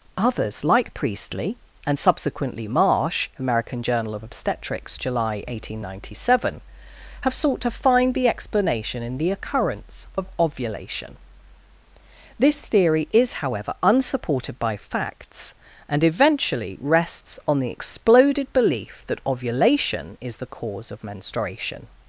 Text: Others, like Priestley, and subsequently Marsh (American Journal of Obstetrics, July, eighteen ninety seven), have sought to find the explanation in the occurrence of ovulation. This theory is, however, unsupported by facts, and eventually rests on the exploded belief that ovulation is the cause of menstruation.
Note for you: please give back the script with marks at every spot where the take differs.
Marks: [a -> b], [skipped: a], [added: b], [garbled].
Others, like Priestley, and subsequently Marsh (American Journal of Obstetrics, July, eighteen ninety seven), have sought to find the explanation in the occurrence of ovulation. This theory is, however, unsupported by facts, and eventually rests on the exploded belief that ovulation is the cause of menstruation.